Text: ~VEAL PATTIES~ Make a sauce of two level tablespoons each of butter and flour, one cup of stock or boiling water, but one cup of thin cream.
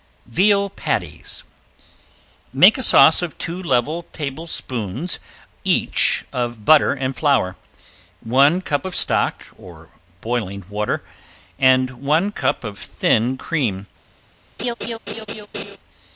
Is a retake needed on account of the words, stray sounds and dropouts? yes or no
yes